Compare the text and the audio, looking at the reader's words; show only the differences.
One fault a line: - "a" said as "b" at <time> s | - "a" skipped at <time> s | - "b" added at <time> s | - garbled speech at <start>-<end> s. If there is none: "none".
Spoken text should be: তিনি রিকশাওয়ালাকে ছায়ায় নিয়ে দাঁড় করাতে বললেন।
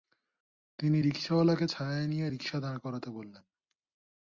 - "রিকশা" added at 2.3 s